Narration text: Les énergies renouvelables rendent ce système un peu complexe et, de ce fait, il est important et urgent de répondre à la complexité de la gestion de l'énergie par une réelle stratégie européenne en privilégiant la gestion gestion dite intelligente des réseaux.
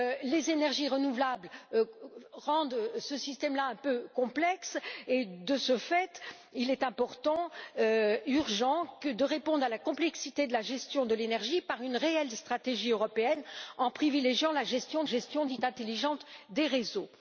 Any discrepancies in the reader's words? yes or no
no